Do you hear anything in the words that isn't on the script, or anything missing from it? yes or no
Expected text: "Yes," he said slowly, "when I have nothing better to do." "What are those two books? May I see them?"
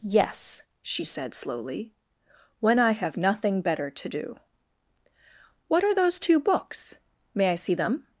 yes